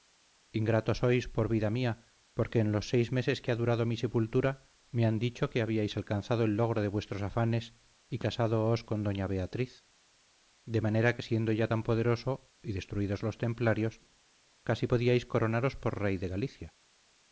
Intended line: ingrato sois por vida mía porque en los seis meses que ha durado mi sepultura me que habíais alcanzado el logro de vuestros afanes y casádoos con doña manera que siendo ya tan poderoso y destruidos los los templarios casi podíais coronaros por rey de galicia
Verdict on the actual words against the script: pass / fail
fail